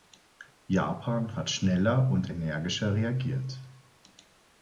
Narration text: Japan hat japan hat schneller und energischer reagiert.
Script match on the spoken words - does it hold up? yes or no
no